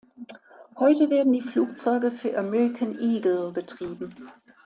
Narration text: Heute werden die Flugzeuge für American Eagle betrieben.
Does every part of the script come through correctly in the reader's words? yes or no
yes